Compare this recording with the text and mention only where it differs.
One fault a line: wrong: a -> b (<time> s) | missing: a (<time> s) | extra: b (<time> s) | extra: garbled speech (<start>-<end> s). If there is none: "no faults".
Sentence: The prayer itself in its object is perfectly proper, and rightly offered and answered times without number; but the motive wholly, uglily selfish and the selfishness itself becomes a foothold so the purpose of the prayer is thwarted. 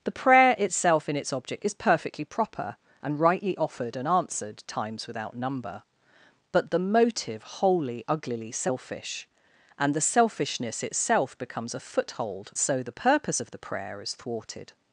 no faults